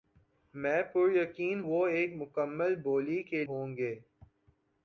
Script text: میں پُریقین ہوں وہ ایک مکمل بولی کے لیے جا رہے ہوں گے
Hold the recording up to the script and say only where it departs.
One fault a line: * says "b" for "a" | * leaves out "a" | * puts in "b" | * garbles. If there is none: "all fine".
* leaves out "ہوں"
* leaves out "لیے جا رہے"